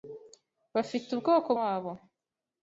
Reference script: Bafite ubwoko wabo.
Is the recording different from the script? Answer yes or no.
no